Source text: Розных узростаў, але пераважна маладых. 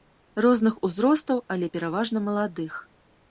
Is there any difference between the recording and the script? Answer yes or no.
no